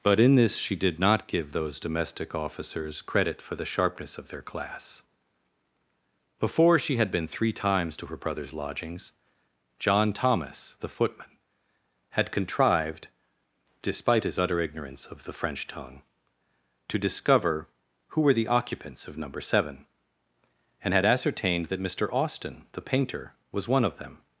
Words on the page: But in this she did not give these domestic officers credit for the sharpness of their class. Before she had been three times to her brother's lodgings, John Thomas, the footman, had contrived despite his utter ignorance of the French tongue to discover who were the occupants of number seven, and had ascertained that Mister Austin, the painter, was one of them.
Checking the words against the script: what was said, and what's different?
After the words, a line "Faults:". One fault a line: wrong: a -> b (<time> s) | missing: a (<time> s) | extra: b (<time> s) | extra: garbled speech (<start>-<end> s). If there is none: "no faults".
But in this she did not give those domestic officers credit for the sharpness of their class. Before she had been three times to her brother's lodgings, John Thomas, the footman, had contrived despite his utter ignorance of the French tongue to discover who were the occupants of number seven, and had ascertained that Mister Austin, the painter, was one of them.
Faults:
wrong: these -> those (1.5 s)